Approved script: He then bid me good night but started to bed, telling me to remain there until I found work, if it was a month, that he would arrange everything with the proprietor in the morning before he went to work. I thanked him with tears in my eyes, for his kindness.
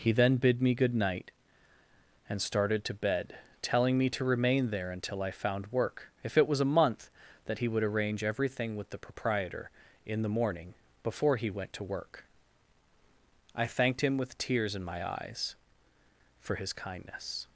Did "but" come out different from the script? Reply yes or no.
yes